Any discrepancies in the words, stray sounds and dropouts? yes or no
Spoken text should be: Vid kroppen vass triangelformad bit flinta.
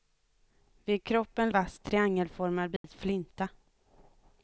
yes